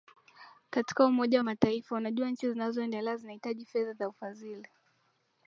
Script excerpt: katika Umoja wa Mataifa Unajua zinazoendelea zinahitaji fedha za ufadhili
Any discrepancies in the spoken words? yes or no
yes